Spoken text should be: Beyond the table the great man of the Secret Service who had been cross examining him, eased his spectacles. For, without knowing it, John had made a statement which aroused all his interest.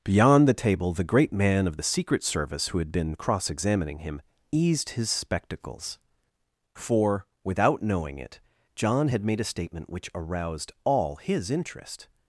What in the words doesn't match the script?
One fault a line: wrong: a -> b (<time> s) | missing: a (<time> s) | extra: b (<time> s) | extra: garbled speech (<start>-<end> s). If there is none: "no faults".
no faults